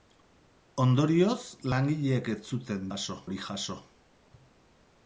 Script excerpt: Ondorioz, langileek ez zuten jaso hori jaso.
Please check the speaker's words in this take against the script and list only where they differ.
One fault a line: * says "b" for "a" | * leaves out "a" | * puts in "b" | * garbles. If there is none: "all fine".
all fine